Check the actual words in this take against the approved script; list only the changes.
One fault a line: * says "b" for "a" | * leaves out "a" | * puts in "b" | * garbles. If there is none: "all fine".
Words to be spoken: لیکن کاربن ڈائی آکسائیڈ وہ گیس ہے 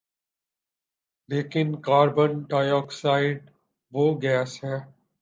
all fine